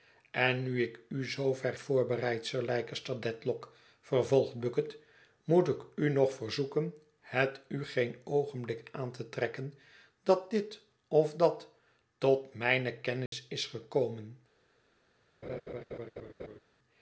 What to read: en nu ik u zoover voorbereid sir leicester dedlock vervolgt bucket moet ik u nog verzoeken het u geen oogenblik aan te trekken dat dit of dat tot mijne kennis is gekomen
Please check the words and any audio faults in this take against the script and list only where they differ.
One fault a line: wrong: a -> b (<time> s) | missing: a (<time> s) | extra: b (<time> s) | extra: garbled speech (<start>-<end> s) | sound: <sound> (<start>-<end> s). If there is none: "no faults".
sound: dropout (13.3-13.3 s)
sound: laugh (15.4-16.6 s)